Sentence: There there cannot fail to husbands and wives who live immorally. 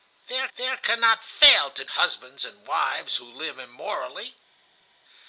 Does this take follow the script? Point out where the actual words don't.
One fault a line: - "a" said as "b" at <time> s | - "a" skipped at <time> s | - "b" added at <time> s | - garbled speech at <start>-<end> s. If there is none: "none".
none